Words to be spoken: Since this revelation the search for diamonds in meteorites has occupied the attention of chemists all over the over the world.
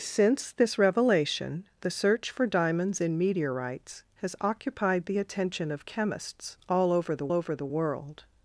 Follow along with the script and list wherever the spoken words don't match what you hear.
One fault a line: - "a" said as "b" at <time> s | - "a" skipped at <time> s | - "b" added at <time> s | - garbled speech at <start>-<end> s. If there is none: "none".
none